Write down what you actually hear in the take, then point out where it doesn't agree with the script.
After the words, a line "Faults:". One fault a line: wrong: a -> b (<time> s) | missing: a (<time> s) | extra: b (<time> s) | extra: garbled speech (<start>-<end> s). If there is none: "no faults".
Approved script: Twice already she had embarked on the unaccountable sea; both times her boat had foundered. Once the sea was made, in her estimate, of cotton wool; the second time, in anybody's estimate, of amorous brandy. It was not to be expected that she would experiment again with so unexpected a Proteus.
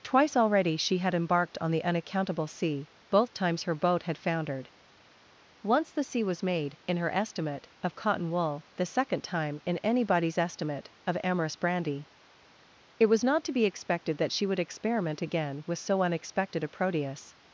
Twice already she had embarked on the unaccountable sea; both times her boat had foundered. Once the sea was made, in her estimate, of cotton wool; the second time, in anybody's estimate, of amorous brandy. It was not to be expected that she would experiment again with so unexpected a Proteus.
Faults:
no faults